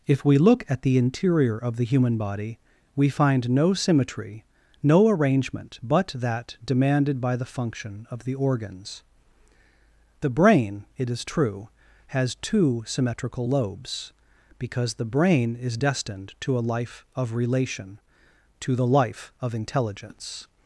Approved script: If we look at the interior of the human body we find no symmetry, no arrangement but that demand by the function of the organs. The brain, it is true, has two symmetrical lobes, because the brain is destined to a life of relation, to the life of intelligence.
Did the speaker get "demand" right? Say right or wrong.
wrong